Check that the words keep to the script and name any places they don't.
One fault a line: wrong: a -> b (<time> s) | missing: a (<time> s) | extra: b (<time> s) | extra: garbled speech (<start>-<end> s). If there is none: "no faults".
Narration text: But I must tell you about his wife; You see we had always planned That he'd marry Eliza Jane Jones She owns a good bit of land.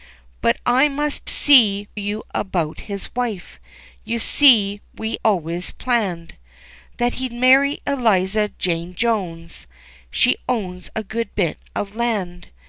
wrong: tell -> see (1.3 s)
missing: had (5.2 s)